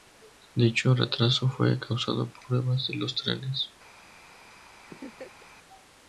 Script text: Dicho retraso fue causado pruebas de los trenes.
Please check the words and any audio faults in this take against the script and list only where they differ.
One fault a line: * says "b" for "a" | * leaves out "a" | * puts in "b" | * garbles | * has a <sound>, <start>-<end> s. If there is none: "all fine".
* has a laugh, 4.9-5.5 s